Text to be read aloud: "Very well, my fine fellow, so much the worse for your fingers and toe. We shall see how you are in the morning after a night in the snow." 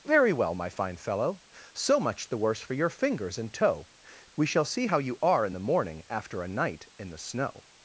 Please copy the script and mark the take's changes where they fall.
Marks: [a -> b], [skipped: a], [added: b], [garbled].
"Very well, my fine fellow, so much the worse for your fingers and toe. We shall see how you are in the morning after a night in the snow."